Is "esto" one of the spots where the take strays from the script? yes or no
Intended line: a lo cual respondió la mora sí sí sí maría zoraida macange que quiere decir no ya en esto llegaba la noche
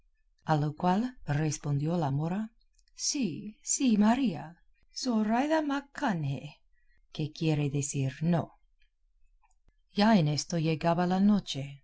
no